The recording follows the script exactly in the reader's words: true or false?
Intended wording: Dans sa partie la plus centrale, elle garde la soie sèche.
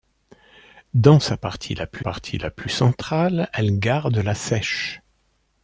false